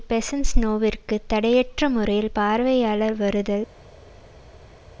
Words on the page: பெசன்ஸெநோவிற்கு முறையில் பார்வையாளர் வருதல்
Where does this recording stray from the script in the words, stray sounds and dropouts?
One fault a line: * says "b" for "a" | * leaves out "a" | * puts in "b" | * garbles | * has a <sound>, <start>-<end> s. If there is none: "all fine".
* puts in "தடையற்ற"